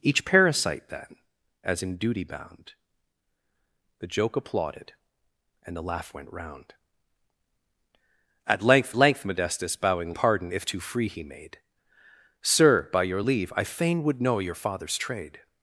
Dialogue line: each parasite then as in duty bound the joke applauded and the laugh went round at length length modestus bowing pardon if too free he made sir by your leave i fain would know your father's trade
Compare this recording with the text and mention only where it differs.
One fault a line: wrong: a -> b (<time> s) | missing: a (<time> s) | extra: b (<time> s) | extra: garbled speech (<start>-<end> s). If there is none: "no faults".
no faults